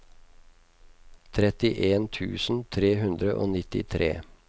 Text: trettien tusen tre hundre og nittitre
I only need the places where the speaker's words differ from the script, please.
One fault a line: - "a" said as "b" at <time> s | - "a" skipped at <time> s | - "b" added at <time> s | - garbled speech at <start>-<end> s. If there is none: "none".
none